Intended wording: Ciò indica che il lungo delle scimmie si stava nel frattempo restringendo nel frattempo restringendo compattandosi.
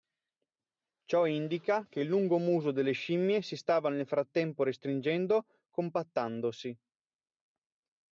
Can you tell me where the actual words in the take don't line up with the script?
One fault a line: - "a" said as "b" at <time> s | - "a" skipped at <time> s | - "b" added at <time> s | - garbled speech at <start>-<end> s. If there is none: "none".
- "muso" added at 2.4 s
- "nel frattempo restringendo" skipped at 5.5 s